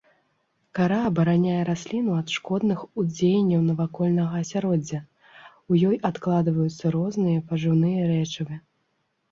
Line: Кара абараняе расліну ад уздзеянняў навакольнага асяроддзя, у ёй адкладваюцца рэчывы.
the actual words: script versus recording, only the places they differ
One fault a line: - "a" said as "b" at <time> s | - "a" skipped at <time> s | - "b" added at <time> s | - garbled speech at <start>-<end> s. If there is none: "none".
- "шкодных" added at 2.4 s
- "розныя пажыўныя" added at 7.0 s